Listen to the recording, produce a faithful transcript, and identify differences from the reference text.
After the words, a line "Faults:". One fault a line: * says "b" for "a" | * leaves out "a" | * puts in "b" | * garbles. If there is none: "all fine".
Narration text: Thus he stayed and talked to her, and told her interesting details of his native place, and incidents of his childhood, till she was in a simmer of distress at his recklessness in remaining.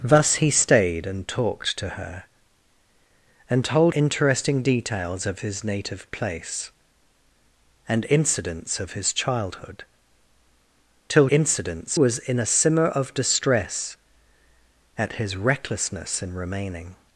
Thus he stayed and talked to her, and told interesting details of his native place, and incidents of his childhood, till incidents was in a simmer of distress at his recklessness in remaining.
Faults:
* leaves out "her"
* says "incidents" for "she"